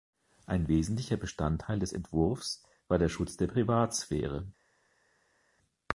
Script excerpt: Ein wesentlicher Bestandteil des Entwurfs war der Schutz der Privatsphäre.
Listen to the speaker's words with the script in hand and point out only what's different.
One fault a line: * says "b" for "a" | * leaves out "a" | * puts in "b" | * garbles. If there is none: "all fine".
all fine